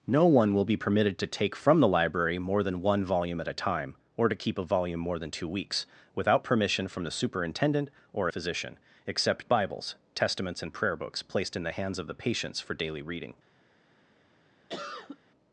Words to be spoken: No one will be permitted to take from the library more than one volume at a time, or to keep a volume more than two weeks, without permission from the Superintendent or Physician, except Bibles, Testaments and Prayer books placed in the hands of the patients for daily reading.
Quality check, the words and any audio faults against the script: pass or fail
fail